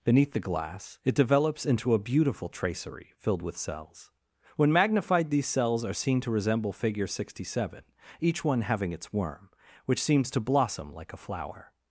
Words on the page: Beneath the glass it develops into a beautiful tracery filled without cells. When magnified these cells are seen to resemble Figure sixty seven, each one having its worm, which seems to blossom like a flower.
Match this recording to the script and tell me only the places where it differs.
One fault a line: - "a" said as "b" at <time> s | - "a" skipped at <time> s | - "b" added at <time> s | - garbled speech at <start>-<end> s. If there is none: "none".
- "without" said as "with" at 3.4 s